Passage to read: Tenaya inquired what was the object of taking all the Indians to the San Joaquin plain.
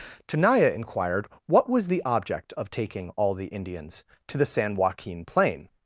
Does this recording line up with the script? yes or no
yes